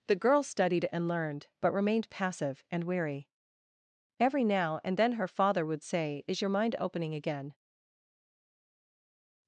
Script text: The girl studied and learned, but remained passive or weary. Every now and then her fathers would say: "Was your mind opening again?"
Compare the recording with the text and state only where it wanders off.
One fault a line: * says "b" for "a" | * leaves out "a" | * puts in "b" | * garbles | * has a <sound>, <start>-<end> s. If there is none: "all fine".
* says "and" for "or"
* says "father" for "fathers"
* says "Is" for "Was"